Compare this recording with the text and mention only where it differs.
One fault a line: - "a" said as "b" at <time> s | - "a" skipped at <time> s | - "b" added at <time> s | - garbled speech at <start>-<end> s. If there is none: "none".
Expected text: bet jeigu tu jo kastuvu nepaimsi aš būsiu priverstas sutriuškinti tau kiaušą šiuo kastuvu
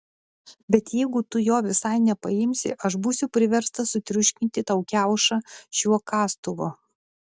- "kastuvu" said as "visai" at 1.6 s